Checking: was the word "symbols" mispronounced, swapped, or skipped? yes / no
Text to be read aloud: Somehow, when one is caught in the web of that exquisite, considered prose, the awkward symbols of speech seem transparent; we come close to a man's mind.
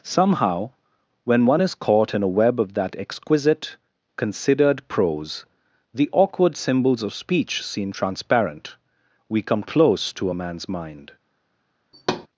no